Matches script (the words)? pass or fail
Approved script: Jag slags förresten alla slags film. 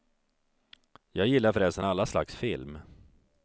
fail